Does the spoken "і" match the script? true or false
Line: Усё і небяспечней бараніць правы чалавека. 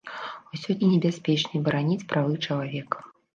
true